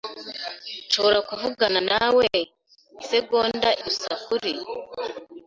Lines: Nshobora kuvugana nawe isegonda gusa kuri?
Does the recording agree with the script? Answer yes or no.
yes